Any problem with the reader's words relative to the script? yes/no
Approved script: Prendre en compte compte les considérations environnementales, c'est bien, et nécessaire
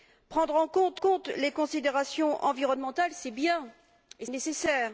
no